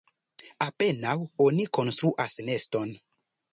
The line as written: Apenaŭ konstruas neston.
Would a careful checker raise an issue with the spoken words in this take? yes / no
yes